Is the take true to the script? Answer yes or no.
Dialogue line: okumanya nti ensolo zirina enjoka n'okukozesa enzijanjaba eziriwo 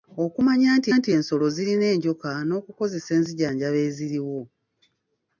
no